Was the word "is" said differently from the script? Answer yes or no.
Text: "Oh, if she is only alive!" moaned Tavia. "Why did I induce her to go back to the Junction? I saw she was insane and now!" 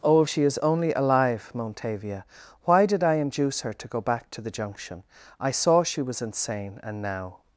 no